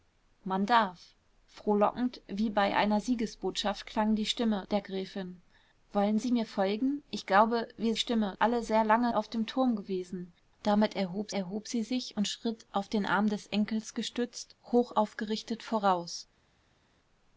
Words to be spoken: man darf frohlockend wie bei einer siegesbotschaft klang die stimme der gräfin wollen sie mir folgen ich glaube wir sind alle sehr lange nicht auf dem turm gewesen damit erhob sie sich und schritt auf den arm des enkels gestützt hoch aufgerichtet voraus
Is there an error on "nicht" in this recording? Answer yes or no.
yes